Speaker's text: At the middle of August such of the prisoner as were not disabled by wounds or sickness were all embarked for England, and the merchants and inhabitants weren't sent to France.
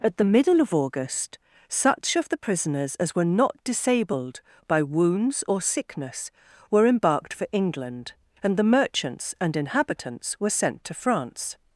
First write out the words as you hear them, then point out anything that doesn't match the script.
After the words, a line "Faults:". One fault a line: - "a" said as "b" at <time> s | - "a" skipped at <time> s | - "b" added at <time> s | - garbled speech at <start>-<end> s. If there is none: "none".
At the middle of August such of the prisoners as were not disabled by wounds or sickness were embarked for England, and the merchants and inhabitants were sent to France.
Faults:
- "prisoner" said as "prisoners" at 2.4 s
- "all" skipped at 6.9 s
- "weren't" said as "were" at 10.4 s